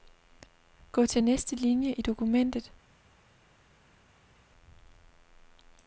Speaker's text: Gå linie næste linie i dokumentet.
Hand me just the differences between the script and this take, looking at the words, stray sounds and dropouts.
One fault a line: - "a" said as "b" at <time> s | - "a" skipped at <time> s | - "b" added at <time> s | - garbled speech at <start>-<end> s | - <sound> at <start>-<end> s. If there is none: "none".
- "linie" said as "til" at 1.0 s